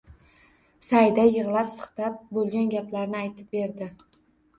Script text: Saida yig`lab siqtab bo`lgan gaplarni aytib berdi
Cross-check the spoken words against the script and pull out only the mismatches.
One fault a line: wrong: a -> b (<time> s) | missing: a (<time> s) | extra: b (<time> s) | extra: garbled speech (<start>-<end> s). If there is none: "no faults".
no faults